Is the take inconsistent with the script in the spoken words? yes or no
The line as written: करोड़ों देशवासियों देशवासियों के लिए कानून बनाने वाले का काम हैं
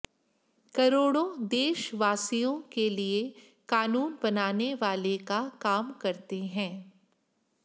yes